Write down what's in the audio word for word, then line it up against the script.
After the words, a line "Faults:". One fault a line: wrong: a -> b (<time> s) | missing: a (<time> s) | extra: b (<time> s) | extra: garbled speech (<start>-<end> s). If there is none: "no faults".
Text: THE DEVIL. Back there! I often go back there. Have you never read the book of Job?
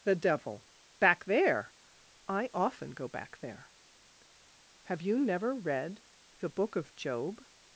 THE DEVIL. Back there! I often go back there. Have you never read the book of Job?
Faults:
no faults